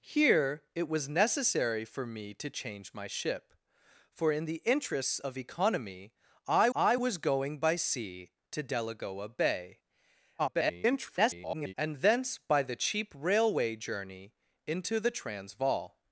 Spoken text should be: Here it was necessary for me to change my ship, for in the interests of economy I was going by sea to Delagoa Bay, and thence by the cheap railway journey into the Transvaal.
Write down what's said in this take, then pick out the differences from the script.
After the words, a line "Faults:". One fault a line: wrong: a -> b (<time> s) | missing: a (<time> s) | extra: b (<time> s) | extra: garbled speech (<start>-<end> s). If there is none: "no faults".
Here it was necessary for me to change my ship, for in the interests of economy I I was going by sea to Delagoa Bay, [garbled] and thence by the cheap railway journey into the Transvaal.
Faults:
extra: I (6.7 s)
extra: garbled speech (10.4-11.7 s)